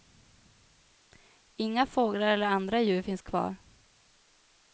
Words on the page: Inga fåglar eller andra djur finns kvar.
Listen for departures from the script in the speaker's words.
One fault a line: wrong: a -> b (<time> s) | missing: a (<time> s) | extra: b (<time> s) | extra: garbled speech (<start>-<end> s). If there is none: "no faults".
no faults